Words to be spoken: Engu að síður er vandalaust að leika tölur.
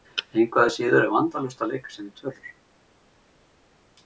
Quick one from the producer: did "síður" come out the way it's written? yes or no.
yes